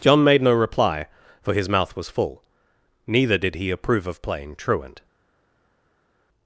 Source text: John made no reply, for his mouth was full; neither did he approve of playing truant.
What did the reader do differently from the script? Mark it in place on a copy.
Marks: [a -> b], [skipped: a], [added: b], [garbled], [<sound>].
John made no reply, for his mouth was full; neither did he approve of playing truant.